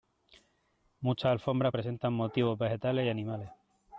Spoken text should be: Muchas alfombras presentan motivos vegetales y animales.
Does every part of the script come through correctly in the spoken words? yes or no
yes